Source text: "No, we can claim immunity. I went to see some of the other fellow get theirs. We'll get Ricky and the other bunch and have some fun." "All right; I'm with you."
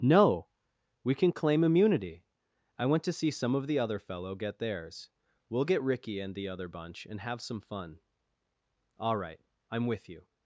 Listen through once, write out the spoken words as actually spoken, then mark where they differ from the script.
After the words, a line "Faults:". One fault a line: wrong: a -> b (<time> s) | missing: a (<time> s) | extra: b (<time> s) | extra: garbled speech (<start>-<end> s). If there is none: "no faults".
"No, we can claim immunity. I went to see some of the other fellow get theirs. We'll get Ricky and the other bunch and have some fun." "All right; I'm with you."
Faults:
no faults